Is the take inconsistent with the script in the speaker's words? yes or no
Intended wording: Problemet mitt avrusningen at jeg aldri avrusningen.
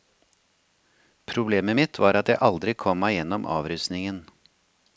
yes